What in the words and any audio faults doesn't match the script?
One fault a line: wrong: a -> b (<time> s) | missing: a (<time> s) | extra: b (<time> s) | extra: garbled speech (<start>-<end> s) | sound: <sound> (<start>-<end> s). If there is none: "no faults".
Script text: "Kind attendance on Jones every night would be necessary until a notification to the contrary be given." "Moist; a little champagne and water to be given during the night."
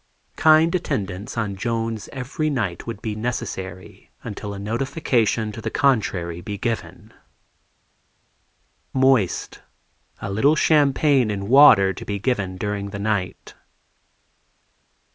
no faults